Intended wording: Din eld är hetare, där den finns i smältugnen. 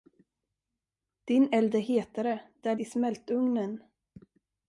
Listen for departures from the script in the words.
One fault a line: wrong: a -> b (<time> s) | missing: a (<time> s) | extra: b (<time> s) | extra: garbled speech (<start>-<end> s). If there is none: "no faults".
missing: den finns (2.8 s)